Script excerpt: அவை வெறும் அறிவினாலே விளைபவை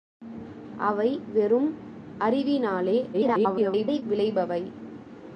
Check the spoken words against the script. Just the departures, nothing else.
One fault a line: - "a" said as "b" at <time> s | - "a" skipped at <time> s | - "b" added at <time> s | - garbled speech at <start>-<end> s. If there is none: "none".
- garbled speech at 3.1-4.0 s